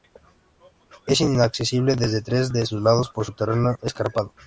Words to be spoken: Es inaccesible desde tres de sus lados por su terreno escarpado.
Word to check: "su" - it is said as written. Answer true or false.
true